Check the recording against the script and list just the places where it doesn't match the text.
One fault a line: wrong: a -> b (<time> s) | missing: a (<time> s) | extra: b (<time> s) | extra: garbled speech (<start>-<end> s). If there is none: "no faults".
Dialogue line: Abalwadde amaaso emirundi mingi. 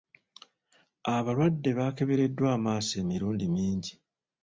extra: baakebereddwa (1.8 s)